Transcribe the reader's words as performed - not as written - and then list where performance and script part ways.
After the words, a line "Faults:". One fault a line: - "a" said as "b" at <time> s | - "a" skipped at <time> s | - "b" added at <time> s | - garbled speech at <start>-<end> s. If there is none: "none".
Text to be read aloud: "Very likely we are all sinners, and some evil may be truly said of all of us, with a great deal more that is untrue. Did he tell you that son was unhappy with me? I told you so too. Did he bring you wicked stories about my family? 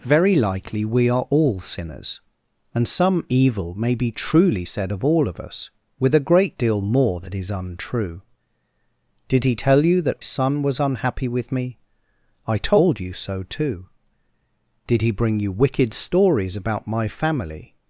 "Very likely we are all sinners, and some evil may be truly said of all of us, with a great deal more that is untrue. Did he tell you that son was unhappy with me? I told you so too. Did he bring you wicked stories about my family?
Faults:
none